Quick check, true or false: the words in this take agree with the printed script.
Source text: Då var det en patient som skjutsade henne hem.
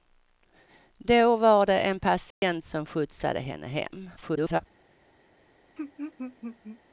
false